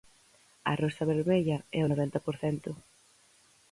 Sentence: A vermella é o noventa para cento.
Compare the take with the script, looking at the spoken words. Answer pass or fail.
fail